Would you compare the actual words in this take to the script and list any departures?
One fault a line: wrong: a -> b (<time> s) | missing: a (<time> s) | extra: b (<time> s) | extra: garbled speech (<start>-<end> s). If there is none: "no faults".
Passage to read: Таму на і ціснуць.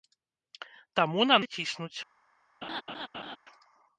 no faults